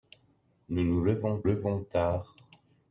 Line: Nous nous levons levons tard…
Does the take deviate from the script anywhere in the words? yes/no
no